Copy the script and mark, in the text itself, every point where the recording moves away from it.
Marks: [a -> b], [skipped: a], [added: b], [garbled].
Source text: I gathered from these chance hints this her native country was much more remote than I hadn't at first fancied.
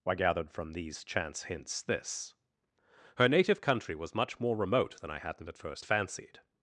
I gathered from these chance hints this her native country was much more remote than I hadn't at first fancied.